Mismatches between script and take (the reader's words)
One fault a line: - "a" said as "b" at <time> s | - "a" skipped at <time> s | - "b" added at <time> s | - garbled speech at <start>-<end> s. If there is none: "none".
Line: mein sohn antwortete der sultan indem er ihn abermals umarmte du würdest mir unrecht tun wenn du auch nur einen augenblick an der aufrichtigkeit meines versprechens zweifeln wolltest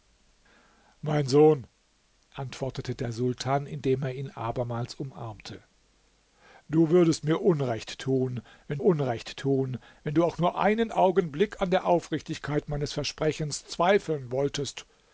- "unrecht tun wenn" added at 8.8 s